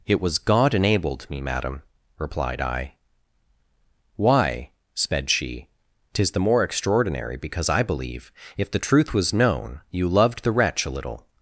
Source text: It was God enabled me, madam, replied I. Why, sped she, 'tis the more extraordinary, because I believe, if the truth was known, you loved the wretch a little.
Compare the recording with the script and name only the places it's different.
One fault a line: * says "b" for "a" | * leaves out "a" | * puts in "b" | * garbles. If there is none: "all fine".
all fine